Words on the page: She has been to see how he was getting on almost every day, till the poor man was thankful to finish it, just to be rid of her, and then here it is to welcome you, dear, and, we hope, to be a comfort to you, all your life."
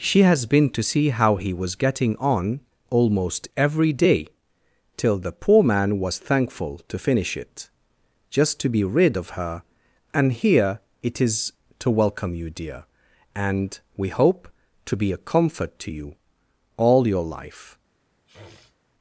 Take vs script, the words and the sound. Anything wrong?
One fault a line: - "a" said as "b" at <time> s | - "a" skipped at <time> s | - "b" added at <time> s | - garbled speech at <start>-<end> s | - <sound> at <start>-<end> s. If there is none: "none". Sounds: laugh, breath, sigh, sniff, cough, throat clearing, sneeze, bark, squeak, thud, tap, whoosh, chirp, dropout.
- "then" skipped at 10.3 s
- sniff at 18.3-18.8 s